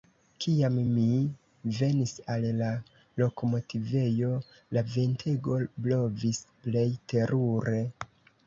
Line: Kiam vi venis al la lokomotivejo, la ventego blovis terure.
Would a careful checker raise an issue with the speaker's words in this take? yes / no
yes